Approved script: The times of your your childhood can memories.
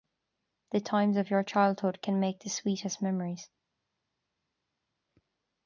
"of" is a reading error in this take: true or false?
false